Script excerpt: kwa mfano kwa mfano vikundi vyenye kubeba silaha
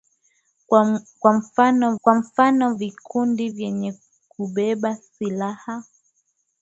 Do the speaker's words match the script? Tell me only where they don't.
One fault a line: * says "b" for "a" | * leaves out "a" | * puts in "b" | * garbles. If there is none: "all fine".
all fine